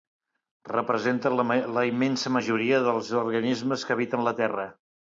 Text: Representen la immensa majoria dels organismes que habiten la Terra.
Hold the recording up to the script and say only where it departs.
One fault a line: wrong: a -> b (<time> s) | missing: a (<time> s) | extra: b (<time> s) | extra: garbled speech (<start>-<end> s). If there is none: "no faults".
no faults